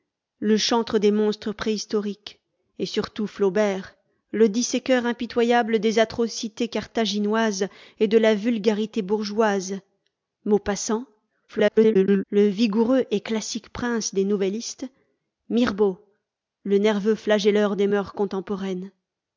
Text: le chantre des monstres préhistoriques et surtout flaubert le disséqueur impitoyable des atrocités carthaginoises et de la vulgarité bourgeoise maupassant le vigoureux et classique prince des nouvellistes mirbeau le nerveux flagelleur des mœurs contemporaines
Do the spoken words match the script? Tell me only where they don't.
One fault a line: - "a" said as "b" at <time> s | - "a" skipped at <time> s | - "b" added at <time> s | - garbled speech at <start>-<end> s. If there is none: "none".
- garbled speech at 11.5-12.2 s